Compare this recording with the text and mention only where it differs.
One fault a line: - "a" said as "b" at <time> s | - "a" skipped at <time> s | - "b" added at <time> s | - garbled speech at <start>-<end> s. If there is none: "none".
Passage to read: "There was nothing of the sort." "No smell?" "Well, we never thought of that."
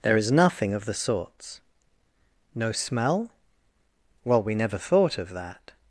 - "was" said as "is" at 0.2 s
- "sort" said as "sorts" at 0.9 s